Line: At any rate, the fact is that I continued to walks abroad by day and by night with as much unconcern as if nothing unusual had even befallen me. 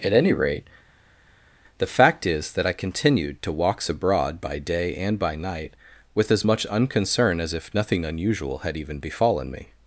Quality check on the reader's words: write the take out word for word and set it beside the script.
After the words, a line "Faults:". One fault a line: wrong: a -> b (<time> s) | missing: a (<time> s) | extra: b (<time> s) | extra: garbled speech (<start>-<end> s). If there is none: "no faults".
At any rate, the fact is that I continued to walks abroad by day and by night with as much unconcern as if nothing unusual had even befallen me.
Faults:
no faults